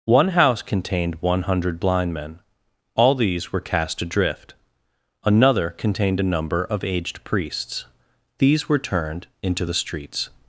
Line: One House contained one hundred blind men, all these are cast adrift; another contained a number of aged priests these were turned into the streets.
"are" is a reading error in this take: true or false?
true